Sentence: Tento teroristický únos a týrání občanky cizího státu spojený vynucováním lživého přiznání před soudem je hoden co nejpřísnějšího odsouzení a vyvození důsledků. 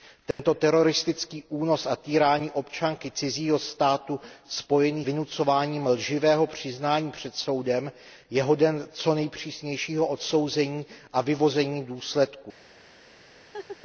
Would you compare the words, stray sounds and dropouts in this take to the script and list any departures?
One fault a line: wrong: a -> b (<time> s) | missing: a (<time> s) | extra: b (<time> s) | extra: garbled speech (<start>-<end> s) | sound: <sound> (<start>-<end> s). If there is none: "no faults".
sound: dropout (0.3-0.4 s)
sound: laugh (13.5-13.8 s)